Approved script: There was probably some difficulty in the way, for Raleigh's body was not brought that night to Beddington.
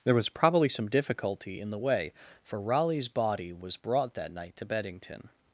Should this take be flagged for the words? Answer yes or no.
yes